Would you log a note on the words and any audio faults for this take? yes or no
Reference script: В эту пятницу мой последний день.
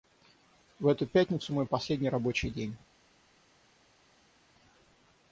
yes